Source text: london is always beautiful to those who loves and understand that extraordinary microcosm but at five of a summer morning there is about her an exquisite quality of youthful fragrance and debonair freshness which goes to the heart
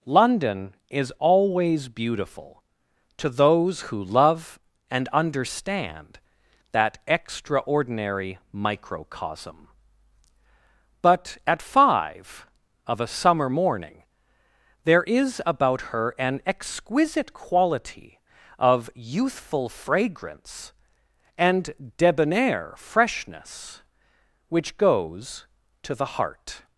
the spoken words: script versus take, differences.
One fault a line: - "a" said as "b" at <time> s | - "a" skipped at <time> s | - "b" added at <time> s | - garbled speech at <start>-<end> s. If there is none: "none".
- "loves" said as "love" at 4.0 s